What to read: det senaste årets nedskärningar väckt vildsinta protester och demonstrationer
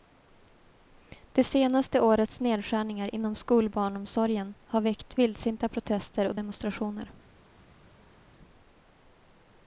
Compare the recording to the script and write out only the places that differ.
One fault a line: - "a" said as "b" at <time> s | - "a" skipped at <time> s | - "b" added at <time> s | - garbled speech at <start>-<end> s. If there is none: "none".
- "inom skolbarnomsorgen har" added at 3.1 s